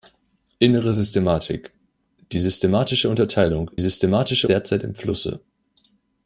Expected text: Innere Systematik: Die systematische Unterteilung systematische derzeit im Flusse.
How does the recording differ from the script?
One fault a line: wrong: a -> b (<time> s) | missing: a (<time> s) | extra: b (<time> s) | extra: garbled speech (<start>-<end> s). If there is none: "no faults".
no faults